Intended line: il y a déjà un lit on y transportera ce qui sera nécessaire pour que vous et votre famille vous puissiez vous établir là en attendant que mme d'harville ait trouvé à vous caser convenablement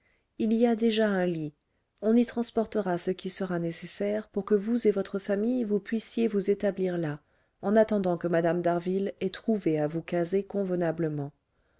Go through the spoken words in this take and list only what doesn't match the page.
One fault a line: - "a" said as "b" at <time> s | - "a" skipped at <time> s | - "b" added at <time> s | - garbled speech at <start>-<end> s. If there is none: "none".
none